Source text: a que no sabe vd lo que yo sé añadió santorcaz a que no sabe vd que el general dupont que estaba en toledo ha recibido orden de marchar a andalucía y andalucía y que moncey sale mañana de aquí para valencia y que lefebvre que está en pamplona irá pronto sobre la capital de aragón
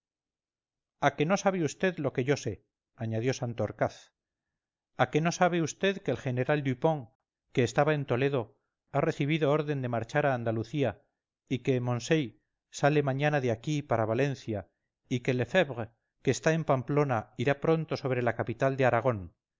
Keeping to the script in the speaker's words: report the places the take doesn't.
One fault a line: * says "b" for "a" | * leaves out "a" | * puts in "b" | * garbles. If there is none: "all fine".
* leaves out "andalucía y"